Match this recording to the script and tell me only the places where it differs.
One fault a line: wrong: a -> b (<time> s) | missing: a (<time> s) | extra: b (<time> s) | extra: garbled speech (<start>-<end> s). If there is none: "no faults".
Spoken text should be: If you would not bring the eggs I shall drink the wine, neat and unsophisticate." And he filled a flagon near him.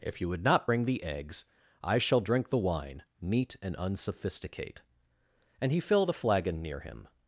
no faults